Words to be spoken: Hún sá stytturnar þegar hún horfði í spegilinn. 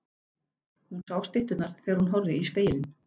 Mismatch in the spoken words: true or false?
false